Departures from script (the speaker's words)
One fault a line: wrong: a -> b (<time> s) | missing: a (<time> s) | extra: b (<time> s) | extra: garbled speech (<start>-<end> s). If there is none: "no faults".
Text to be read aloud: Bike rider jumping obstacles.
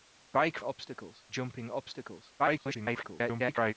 wrong: rider -> obstacles (0.6 s)
extra: garbled speech (2.4-3.7 s)